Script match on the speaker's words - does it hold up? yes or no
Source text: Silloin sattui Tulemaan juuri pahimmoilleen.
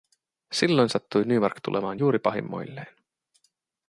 no